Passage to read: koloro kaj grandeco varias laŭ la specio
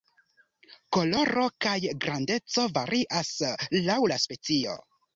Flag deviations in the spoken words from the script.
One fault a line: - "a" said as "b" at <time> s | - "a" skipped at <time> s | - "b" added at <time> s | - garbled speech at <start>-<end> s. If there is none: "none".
none